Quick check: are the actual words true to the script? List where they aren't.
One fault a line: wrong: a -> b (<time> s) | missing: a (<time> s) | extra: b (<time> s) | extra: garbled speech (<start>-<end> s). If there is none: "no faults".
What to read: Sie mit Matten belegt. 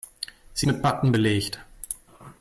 no faults